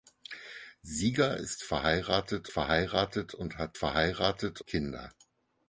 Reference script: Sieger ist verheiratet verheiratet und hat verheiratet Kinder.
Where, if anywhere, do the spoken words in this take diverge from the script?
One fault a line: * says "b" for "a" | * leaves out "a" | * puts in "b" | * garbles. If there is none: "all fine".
all fine